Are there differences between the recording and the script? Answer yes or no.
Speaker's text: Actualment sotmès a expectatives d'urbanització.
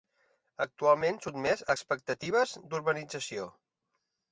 no